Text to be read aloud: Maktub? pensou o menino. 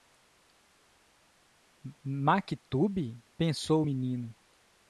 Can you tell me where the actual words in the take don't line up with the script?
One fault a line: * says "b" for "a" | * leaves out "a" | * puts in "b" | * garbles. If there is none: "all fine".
all fine